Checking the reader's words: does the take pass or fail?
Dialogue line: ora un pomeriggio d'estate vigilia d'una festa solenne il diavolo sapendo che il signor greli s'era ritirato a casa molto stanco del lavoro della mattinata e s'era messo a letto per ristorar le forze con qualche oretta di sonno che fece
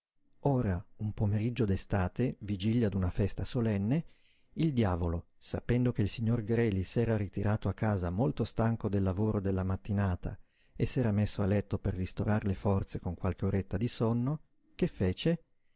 pass